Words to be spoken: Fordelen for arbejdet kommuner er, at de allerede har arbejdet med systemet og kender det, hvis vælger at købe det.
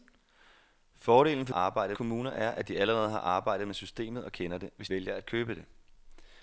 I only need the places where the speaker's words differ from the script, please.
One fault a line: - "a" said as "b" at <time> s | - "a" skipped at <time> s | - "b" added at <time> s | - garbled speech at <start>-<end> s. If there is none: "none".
none